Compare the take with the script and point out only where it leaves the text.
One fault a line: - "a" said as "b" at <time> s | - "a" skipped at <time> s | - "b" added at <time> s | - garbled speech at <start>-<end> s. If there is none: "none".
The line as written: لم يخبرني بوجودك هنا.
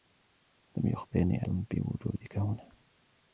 none